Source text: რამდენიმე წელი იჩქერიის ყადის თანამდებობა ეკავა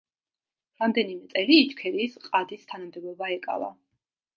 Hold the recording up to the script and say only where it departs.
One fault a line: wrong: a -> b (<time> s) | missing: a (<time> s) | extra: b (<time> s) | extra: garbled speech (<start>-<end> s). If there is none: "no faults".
no faults